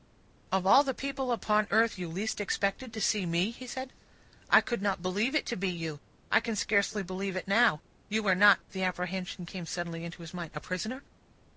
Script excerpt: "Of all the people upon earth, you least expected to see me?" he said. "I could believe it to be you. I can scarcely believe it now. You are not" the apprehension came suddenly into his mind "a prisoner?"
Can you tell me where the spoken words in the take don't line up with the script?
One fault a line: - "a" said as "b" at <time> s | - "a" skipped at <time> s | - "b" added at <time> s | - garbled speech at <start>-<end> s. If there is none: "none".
- "not" added at 4.8 s